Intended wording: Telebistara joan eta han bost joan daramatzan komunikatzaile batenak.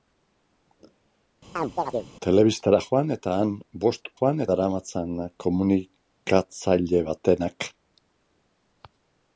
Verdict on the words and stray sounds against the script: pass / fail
fail